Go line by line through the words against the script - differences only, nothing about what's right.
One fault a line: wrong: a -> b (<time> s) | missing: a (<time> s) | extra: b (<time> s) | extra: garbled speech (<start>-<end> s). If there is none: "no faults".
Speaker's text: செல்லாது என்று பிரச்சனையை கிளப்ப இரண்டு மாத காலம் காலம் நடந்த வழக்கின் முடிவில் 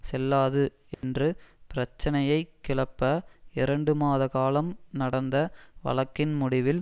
missing: காலம் (4.7 s)